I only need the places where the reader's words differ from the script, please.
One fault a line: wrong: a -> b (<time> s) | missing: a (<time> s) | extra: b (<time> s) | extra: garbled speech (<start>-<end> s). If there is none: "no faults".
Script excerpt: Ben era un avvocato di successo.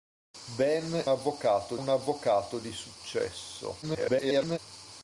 wrong: era -> avvocato (1.1 s)
extra: garbled speech (3.8-4.6 s)